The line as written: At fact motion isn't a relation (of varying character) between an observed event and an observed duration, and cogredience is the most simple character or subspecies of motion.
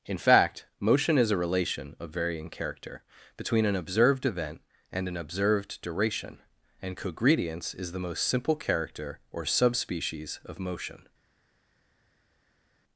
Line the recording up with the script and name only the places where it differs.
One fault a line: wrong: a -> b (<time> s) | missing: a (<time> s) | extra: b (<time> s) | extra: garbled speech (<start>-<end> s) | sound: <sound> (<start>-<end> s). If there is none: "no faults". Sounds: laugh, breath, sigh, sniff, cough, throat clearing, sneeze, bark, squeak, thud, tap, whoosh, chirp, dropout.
wrong: At -> In (0.1 s)
wrong: isn't -> is (1.2 s)